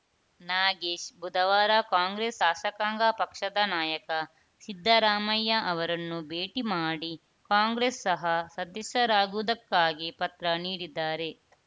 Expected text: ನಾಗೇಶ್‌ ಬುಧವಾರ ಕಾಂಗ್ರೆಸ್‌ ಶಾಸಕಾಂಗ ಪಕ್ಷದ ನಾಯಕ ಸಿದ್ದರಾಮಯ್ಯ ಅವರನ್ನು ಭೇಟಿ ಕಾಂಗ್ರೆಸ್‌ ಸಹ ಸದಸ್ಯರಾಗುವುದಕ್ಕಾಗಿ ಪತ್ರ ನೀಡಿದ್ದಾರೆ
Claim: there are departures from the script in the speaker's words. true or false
true